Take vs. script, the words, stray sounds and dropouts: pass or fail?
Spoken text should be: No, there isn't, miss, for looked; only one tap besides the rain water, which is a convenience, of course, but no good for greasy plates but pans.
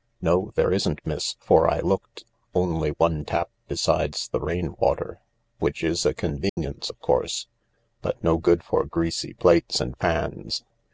fail